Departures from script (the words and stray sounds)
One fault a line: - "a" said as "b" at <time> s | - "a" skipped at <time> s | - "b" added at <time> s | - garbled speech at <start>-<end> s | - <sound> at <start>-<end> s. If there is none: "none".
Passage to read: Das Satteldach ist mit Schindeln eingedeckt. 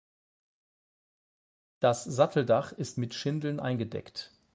none